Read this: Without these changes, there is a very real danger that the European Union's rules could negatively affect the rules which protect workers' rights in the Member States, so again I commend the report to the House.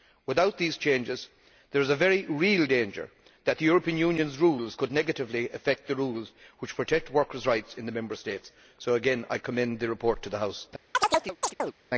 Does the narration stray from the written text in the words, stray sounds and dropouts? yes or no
yes